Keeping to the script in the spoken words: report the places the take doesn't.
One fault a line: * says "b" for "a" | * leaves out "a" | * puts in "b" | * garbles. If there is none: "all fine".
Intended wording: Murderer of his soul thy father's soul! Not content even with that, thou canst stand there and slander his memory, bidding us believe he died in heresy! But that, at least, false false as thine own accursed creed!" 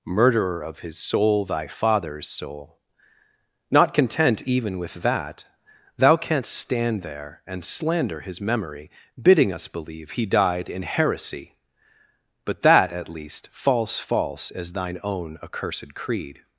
all fine